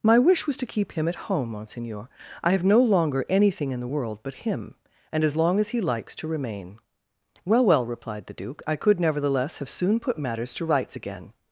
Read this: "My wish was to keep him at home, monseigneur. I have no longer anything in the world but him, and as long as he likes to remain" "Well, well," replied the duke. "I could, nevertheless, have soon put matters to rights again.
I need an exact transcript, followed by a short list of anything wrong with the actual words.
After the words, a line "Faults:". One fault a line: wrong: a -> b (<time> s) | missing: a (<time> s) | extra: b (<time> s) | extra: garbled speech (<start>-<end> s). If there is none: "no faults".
"My wish was to keep him at home, monseigneur. I have no longer anything in the world but him, and as long as he likes to remain" "Well, well," replied the duke. "I could, nevertheless, have soon put matters to rights again.
Faults:
no faults